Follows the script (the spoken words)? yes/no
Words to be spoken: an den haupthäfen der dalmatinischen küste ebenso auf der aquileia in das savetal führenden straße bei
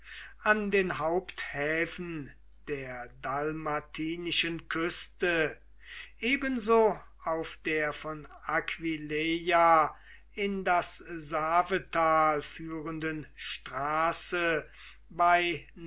no